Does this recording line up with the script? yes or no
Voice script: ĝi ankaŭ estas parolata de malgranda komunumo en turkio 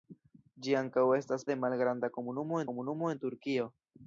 no